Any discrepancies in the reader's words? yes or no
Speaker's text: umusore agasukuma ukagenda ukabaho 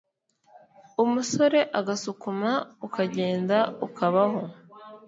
no